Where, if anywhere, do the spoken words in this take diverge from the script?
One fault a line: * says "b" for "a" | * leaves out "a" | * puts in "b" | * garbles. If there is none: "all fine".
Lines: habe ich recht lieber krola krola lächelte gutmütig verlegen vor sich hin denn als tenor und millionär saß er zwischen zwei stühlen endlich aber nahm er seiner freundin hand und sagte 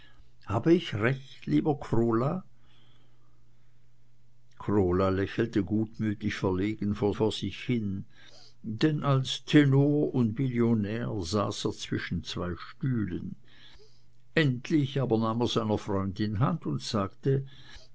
* puts in "vor"